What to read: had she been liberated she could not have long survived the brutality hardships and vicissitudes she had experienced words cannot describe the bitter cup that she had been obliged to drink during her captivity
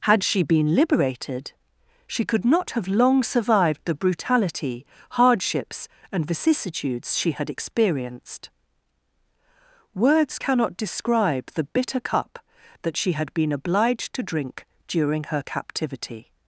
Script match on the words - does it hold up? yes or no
yes